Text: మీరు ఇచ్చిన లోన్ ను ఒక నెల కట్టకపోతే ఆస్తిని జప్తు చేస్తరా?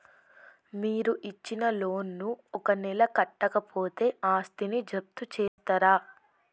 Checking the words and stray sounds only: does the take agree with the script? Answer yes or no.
no